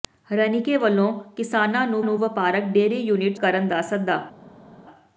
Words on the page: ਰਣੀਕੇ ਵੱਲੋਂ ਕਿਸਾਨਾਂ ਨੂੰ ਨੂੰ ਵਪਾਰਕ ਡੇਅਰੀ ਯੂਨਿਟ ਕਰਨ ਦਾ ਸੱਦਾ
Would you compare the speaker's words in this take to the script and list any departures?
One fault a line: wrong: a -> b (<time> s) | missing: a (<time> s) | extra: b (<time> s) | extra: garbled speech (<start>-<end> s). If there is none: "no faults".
no faults